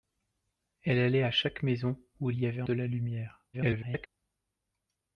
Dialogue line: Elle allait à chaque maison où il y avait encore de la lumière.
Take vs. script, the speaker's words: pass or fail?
fail